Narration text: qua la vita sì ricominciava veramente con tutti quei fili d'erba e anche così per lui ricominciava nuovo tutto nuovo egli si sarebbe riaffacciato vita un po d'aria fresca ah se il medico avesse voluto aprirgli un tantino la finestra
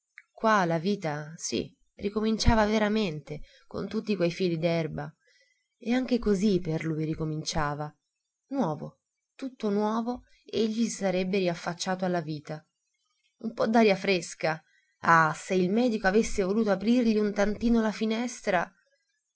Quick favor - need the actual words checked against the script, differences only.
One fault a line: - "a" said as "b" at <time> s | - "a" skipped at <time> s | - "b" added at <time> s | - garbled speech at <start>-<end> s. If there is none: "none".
- "alla" added at 12.1 s